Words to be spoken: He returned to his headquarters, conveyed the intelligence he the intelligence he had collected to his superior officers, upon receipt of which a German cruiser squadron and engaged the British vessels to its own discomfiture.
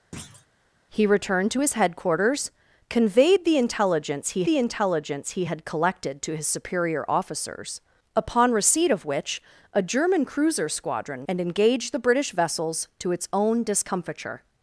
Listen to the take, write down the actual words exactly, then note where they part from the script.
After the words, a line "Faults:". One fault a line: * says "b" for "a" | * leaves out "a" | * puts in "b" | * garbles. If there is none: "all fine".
He returned to his headquarters, conveyed the intelligence he the intelligence he had collected to his superior officers, upon receipt of which a German cruiser squadron and engaged the British vessels to its own discomfiture.
Faults:
all fine